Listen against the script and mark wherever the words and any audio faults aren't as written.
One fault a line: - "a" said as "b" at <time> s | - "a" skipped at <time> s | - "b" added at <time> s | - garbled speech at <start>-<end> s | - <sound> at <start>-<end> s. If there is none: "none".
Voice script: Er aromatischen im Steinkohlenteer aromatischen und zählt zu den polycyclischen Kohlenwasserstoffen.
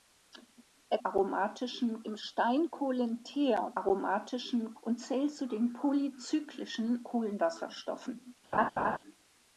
- laugh at 8.5-9.0 s